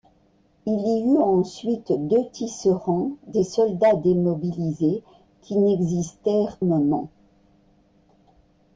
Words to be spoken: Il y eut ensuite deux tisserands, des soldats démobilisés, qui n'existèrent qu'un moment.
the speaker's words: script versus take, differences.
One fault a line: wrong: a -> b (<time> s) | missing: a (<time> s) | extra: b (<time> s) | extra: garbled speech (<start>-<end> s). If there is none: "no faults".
missing: qu'un (6.6 s)